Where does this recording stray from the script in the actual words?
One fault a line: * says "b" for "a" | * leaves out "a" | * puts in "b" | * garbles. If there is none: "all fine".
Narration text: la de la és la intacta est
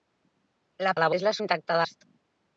all fine